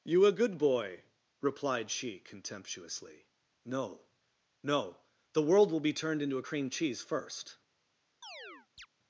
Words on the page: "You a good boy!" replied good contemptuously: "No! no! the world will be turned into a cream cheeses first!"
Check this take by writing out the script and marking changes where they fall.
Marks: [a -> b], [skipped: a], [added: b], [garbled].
"You a good boy!" replied [good -> she] contemptuously: "No! no! the world will be turned into a cream [cheeses -> cheese] first!"